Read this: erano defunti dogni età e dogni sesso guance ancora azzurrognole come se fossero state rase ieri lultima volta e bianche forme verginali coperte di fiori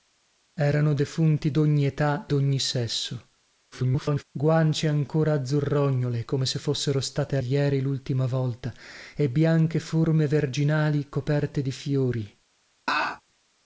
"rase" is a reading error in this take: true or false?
true